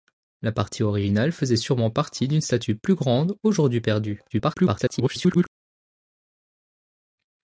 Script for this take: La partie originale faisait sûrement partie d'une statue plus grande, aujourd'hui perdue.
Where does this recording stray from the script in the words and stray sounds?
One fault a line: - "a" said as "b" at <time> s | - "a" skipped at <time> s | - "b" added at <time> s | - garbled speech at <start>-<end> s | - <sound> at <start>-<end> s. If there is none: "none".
- garbled speech at 4.3-5.5 s